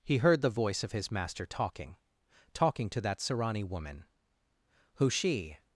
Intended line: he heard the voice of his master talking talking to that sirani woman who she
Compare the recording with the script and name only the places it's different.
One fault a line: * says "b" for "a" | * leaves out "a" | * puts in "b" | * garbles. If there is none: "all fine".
all fine